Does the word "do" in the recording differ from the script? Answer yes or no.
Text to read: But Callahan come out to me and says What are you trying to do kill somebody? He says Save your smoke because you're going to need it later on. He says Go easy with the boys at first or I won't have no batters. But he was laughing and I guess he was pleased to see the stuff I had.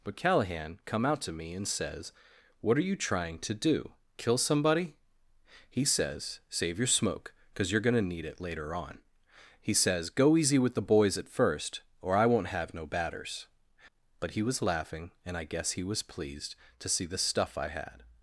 no